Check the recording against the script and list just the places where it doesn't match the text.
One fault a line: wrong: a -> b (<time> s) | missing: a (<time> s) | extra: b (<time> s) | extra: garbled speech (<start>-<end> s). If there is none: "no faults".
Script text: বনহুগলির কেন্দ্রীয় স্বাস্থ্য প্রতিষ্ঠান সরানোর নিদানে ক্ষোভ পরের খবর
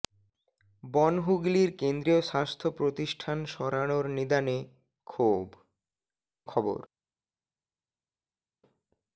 missing: পরের (5.5 s)